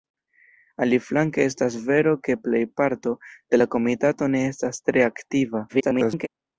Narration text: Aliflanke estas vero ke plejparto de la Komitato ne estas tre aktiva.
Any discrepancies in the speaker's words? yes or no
yes